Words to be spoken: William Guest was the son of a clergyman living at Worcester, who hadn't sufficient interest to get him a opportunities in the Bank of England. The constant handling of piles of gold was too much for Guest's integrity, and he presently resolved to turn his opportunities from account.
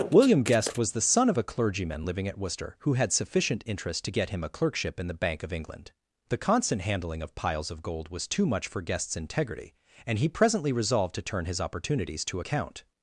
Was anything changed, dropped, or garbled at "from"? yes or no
yes